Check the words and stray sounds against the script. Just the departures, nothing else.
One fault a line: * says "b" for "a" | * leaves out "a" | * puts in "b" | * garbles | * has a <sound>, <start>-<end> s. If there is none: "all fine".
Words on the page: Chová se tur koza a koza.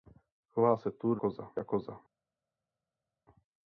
all fine